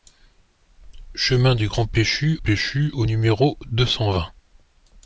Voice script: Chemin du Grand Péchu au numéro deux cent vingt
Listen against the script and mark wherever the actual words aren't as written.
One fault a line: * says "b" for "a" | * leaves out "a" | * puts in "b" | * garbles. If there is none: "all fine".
* puts in "Péchu"